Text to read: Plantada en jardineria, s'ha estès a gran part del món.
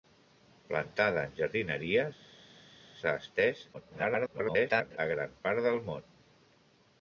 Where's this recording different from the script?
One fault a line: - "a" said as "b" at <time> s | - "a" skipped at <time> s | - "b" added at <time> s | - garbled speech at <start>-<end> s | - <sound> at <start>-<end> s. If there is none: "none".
- garbled speech at 3.7-5.0 s